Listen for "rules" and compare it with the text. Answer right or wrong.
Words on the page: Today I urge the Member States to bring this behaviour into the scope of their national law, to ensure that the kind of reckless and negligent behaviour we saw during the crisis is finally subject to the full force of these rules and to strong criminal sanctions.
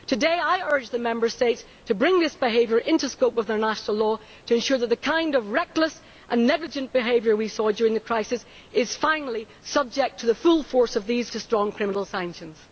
wrong